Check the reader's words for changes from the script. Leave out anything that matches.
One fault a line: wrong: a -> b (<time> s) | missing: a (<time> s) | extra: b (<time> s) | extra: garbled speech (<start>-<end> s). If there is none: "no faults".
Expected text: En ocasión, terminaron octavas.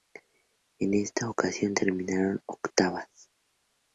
extra: esta (0.9 s)